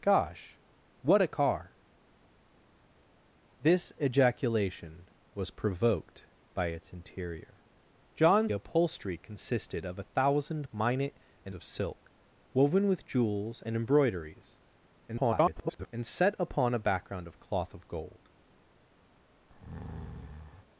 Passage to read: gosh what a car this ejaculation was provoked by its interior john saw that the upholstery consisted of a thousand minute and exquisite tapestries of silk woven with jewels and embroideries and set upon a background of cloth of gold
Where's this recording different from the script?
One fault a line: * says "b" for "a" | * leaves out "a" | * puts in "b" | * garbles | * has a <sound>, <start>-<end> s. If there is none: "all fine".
* leaves out "saw that the"
* leaves out "exquisite tapestries"
* garbles
* has a breath, 19.5-20.6 s